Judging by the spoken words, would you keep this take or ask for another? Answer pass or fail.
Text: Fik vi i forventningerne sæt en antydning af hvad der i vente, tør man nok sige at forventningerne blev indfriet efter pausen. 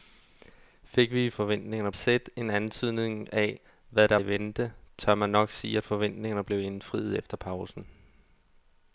pass